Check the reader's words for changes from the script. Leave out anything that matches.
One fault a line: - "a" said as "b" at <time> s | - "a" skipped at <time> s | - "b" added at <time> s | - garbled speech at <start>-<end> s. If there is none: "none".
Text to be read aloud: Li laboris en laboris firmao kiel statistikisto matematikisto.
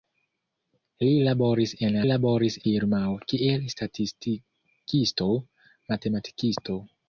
none